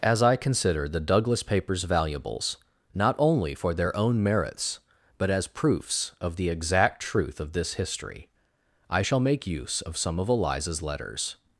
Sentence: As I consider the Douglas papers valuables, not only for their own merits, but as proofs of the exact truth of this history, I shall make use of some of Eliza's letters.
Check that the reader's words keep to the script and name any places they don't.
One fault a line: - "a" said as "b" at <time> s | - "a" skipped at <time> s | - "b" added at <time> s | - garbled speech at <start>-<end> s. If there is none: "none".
none